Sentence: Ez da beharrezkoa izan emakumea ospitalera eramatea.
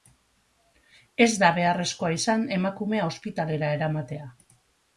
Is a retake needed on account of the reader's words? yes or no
no